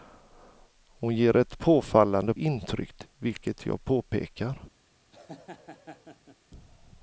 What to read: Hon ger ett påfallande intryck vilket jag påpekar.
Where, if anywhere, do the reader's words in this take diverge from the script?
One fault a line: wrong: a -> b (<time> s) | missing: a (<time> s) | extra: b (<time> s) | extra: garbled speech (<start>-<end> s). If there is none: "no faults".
no faults